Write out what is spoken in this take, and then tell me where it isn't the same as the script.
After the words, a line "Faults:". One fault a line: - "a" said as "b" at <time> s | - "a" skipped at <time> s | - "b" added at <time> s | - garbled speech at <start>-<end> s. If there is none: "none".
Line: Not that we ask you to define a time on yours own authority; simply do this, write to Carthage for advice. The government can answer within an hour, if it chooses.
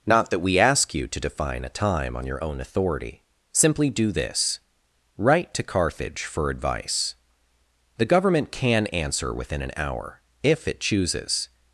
Not that we ask you to define a time on your own authority; simply do this, write to Carthage for advice. The government can answer within an hour, if it chooses.
Faults:
- "yours" said as "your" at 2.2 s